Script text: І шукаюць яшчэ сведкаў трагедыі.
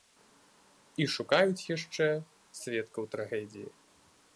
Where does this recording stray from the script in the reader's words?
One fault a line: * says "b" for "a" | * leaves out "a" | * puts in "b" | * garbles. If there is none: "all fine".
all fine